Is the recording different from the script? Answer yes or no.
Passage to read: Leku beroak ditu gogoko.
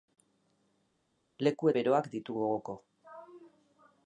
no